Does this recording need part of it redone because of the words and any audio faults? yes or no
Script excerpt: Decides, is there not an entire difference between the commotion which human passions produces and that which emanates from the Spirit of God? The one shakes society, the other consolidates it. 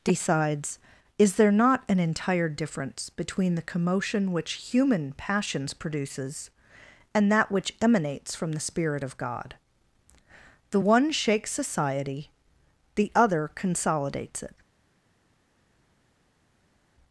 no